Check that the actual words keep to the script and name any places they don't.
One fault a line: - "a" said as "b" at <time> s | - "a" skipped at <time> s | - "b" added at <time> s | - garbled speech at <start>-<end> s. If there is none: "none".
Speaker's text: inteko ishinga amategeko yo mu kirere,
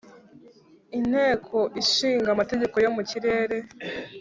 none